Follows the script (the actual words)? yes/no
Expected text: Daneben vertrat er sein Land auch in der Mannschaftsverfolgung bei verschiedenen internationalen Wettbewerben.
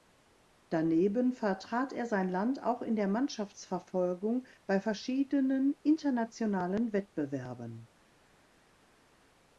yes